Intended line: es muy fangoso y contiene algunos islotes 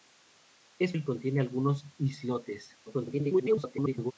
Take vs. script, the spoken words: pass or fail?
fail